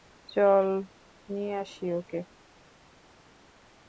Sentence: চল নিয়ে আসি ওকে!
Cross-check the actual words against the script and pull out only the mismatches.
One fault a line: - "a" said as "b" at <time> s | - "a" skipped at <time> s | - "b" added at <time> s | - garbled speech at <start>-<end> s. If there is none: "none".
none